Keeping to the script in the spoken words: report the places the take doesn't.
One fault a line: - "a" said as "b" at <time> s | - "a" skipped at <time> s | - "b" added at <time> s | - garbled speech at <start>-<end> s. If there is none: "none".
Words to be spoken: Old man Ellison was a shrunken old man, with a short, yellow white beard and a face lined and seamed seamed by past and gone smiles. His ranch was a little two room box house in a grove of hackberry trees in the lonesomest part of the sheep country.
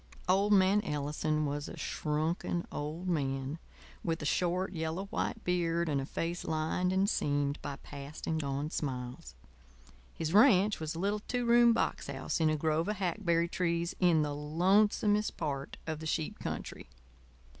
- "seamed" skipped at 7.6 s